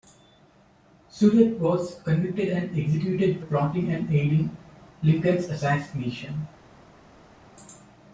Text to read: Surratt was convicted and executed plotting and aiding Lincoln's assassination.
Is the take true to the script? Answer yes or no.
yes